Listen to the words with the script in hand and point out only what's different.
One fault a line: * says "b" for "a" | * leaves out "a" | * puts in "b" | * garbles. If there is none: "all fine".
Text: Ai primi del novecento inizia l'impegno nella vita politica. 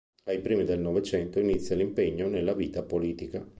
all fine